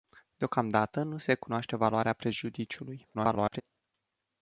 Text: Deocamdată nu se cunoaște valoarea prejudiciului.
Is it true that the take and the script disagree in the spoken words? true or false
true